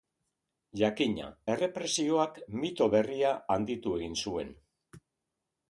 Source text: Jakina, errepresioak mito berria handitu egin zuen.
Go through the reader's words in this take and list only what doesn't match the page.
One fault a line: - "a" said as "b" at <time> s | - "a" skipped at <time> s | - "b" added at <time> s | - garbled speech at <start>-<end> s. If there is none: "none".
none